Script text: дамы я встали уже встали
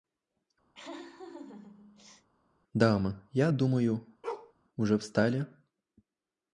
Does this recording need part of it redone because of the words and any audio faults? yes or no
yes